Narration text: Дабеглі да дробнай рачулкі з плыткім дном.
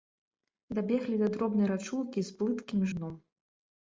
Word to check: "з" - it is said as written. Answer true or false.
true